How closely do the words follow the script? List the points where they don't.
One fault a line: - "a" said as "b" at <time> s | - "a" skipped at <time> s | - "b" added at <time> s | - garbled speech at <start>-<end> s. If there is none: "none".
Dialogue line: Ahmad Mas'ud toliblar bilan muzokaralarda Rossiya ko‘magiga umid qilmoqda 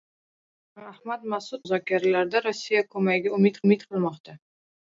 - "toliblar bilan" skipped at 1.6 s
- "umid" added at 3.7 s